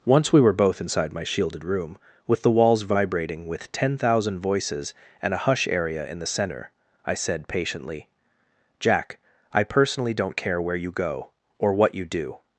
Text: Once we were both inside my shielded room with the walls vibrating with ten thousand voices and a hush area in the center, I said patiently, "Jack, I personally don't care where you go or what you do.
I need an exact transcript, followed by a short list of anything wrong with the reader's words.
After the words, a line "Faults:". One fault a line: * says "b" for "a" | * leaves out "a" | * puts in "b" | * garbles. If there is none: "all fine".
Once we were both inside my shielded room with the walls vibrating with ten thousand voices and a hush area in the center, I said patiently, "Jack, I personally don't care where you go or what you do.
Faults:
all fine